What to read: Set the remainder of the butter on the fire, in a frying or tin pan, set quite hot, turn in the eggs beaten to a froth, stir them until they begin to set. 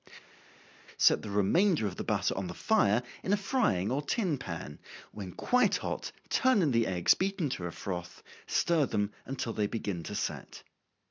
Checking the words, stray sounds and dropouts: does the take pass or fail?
fail